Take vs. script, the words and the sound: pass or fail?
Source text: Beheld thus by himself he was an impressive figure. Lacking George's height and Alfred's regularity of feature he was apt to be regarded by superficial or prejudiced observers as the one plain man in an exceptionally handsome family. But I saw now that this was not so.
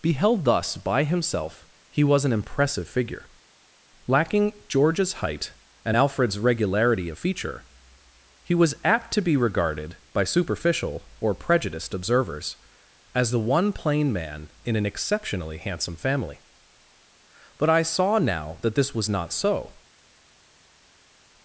pass